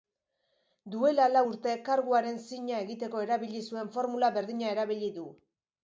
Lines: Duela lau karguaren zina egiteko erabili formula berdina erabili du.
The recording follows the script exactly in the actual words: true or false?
false